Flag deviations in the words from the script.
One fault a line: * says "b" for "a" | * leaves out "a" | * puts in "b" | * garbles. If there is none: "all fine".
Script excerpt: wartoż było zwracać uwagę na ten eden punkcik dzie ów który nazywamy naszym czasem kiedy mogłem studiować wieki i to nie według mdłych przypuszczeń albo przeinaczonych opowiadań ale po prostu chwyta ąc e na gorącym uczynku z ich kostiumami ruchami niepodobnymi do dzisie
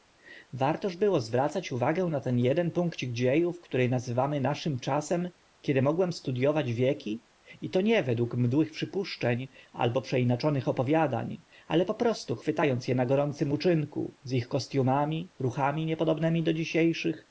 all fine